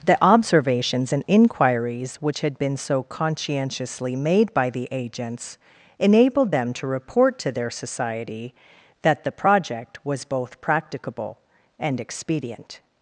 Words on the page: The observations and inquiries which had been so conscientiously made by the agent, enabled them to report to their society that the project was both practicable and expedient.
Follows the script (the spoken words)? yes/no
no